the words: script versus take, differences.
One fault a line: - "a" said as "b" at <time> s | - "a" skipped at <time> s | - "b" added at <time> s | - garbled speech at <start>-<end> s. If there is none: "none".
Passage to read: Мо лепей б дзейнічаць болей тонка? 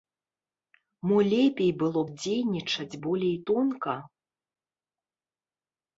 - "было" added at 1.8 s